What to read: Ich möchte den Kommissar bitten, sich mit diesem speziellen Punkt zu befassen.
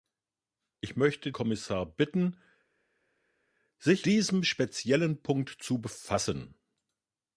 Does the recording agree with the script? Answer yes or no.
no